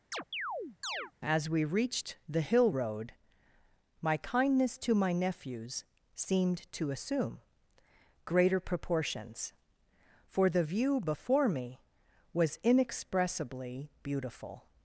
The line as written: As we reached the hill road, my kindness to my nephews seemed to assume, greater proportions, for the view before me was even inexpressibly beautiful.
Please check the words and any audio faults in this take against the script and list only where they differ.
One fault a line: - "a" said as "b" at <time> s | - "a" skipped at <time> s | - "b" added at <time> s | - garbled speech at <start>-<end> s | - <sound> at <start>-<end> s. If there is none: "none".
- chirp at 0.1-1.1 s
- "even" skipped at 12.6 s